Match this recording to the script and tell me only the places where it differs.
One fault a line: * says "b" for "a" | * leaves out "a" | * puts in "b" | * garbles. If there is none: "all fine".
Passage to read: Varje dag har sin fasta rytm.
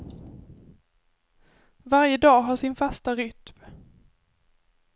all fine